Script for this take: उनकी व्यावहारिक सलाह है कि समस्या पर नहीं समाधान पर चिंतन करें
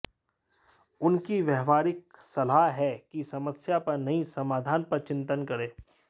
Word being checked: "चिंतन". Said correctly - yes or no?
yes